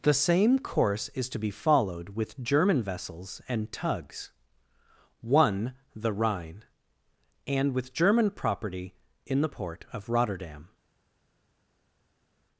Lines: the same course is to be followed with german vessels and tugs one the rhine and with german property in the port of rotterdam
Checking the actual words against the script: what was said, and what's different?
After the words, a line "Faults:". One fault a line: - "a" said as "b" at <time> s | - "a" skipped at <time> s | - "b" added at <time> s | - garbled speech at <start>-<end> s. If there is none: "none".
the same course is to be followed with german vessels and tugs one the rhine and with german property in the port of rotterdam
Faults:
none